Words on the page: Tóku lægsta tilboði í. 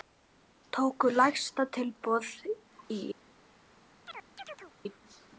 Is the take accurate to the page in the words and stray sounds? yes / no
no